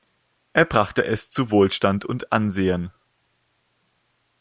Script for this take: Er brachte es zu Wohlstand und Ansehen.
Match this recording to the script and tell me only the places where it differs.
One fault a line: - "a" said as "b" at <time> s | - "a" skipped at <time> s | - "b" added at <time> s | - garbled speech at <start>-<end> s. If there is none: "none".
none